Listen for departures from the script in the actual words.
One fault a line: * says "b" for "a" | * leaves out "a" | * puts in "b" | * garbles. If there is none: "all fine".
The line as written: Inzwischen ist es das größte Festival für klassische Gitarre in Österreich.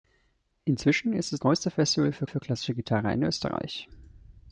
* leaves out "das"
* puts in "für"